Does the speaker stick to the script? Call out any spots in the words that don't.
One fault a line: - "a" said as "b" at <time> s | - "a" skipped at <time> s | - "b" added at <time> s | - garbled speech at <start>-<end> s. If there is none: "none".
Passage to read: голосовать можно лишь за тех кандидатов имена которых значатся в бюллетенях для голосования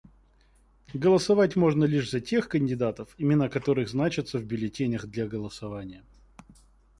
none